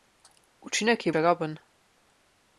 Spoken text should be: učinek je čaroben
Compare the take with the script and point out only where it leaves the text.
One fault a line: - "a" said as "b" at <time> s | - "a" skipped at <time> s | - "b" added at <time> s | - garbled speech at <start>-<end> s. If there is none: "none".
none